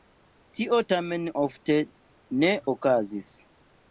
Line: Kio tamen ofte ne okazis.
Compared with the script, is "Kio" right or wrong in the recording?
wrong